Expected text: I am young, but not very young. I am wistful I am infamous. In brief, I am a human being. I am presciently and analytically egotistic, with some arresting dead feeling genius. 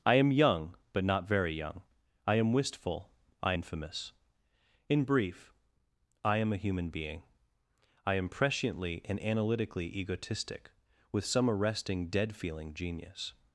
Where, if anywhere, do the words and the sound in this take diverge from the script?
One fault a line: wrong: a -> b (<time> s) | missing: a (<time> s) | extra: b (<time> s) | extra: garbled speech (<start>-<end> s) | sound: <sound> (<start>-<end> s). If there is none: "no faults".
missing: am (3.5 s)